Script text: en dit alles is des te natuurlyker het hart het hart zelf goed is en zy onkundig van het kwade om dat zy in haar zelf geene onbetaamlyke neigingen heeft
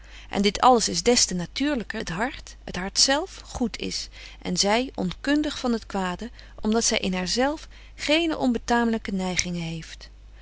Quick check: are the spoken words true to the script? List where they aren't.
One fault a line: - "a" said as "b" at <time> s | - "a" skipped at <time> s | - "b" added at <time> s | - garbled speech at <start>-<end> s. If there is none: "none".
none